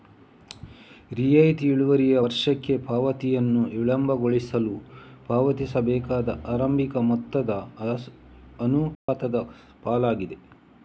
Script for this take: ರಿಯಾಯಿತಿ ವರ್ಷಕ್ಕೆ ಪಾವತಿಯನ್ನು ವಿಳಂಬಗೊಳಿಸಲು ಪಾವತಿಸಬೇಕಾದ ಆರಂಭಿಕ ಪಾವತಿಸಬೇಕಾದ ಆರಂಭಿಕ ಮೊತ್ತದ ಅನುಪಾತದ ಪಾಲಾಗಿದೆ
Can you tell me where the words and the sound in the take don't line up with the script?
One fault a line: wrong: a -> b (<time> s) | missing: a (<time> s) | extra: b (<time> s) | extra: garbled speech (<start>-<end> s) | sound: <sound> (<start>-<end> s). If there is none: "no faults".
extra: ಇಳುವರಿಯು (1.7 s)
missing: ಪಾವತಿಸಬೇಕಾದ ಆರಂಭಿಕ (7.0 s)
sound: dropout (8.9-9.1 s)